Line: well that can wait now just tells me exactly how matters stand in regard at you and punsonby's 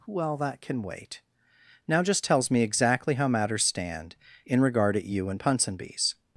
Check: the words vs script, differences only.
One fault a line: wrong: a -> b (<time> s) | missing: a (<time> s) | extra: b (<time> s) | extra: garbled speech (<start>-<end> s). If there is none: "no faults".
no faults